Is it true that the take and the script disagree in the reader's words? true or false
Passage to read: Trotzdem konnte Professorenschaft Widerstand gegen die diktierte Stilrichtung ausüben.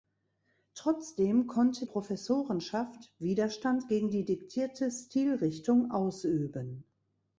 false